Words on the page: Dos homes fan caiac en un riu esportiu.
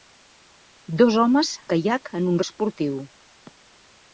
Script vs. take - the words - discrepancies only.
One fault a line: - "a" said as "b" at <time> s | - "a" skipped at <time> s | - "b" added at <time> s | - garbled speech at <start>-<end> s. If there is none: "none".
- "fan" skipped at 1.5 s
- "riu" skipped at 2.4 s